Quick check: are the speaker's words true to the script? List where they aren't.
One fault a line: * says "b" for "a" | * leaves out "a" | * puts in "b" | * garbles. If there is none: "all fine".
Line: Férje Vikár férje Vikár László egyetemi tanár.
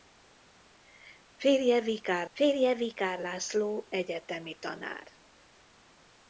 all fine